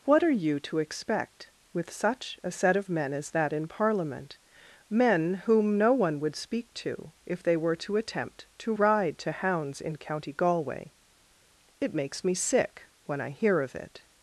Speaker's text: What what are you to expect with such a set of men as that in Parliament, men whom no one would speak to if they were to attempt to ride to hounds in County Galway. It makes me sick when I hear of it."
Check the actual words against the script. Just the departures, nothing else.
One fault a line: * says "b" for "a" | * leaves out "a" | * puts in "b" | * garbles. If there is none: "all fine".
* leaves out "what"